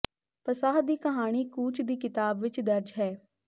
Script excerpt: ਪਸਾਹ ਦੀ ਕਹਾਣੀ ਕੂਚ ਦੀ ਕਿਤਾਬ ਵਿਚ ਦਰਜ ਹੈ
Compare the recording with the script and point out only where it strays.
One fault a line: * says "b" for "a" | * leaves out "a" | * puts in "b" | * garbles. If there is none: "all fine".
all fine